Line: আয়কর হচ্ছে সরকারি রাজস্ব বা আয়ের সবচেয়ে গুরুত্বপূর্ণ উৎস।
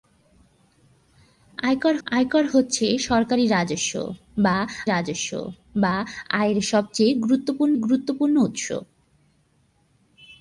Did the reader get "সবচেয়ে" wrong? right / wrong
right